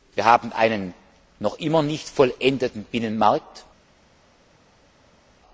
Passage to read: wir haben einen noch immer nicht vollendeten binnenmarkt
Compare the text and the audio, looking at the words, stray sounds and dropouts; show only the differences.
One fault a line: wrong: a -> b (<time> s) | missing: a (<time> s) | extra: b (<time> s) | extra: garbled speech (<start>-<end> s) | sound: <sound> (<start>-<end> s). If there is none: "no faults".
no faults